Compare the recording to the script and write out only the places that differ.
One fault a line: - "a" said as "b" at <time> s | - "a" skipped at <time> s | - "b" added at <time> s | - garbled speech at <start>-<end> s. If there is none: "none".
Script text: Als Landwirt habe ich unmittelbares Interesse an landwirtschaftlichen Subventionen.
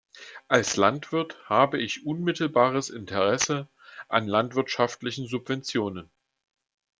none